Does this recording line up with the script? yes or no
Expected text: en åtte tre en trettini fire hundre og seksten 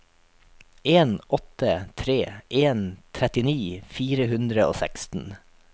yes